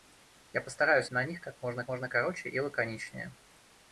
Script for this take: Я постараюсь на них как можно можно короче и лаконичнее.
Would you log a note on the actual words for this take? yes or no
no